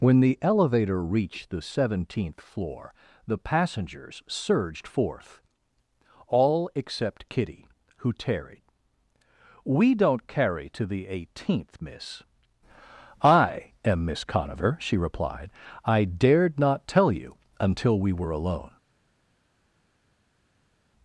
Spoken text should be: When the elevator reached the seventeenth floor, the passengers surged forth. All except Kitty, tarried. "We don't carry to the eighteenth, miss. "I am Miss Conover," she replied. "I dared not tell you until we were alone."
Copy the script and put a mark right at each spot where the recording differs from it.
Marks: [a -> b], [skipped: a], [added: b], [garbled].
When the elevator reached the seventeenth floor, the passengers surged forth. All except Kitty, [added: who] tarried. "We don't carry to the eighteenth, miss. "I am Miss Conover," she replied. "I dared not tell you until we were alone."